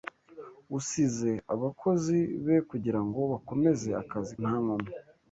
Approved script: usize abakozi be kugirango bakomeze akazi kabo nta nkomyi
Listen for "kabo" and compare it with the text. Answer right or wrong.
wrong